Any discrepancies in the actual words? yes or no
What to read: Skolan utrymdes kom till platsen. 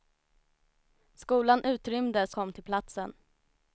no